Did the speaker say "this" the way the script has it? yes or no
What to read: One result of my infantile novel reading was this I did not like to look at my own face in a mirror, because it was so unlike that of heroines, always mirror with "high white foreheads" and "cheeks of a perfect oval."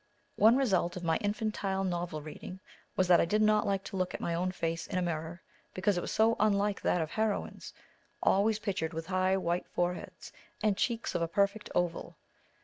no